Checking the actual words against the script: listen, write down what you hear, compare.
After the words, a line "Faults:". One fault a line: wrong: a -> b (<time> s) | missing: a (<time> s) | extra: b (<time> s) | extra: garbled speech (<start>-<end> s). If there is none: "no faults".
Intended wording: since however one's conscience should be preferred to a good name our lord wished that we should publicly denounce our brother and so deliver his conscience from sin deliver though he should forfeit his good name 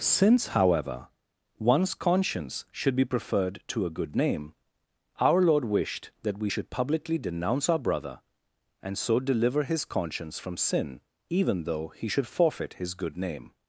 since however one's conscience should be preferred to a good name our lord wished that we should publicly denounce our brother and so deliver his conscience from sin even though he should forfeit his good name
Faults:
wrong: deliver -> even (11.3 s)